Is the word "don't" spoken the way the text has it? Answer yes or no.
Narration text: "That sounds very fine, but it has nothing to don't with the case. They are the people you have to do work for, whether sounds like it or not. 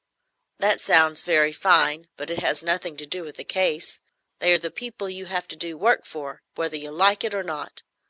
no